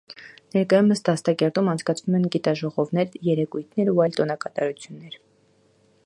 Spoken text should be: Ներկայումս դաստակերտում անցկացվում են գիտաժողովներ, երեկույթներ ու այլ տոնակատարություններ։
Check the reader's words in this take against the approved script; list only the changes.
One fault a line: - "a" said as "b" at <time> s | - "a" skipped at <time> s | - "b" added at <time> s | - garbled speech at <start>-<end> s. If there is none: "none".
none